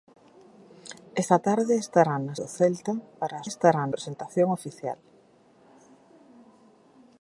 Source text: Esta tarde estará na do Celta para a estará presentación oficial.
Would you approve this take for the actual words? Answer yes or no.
yes